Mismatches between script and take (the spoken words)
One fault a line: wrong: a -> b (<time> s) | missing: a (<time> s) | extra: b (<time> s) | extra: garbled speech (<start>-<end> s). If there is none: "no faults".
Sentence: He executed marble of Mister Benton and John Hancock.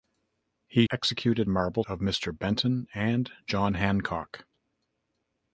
no faults